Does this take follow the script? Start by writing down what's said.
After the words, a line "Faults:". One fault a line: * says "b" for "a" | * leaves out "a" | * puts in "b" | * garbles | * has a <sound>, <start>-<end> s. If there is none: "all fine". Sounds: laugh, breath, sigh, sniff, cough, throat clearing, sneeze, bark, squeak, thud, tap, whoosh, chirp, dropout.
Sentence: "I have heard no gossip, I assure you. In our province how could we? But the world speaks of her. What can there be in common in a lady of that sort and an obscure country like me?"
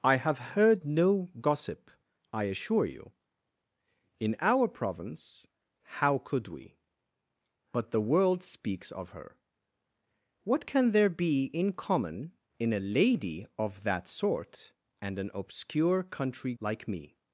"I have heard no gossip, I assure you. In our province how could we? But the world speaks of her. What can there be in common in a lady of that sort and an obscure country like me?"
Faults:
all fine